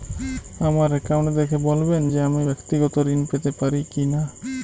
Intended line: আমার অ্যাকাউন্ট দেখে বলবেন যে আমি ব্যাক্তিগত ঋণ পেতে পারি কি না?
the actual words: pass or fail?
pass